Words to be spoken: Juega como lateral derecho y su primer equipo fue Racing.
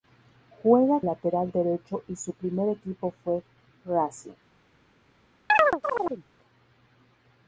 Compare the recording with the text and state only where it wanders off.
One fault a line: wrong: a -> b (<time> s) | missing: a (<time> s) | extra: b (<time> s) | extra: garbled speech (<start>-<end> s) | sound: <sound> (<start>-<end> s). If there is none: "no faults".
missing: como (1.0 s)
sound: chirp (5.5-6.2 s)